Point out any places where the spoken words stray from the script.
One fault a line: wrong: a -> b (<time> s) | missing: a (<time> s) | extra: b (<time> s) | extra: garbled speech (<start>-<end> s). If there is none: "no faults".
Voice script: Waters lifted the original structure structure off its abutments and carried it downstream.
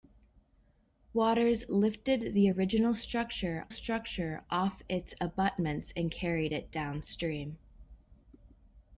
no faults